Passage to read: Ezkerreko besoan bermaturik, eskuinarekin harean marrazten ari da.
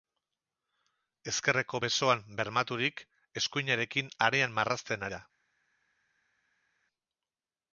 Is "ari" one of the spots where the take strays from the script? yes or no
yes